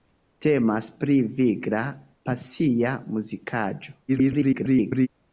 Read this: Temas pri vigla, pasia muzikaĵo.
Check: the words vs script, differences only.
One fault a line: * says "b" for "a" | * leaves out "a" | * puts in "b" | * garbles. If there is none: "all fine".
* garbles